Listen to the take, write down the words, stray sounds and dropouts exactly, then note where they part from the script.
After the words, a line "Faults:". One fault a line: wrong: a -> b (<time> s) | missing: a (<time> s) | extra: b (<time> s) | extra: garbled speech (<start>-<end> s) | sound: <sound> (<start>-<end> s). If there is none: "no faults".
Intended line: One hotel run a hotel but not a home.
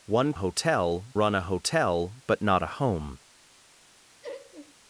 One hotel run a hotel but not a home.
Faults:
sound: laugh (4.2-4.7 s)